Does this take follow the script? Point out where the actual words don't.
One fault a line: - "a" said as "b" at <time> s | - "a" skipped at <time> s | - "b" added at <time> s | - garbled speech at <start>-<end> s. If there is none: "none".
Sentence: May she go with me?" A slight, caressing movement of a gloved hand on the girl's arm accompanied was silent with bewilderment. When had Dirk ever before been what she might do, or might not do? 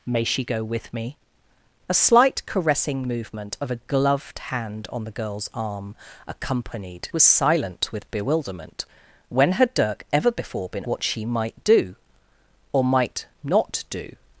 none